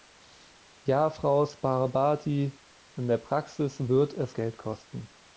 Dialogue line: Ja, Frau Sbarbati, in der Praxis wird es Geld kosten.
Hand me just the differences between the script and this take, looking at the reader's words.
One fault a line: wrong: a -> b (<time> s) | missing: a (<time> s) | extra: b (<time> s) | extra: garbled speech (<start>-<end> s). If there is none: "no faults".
no faults